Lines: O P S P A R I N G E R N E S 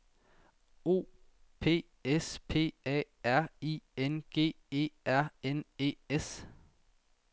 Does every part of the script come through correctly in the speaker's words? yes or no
yes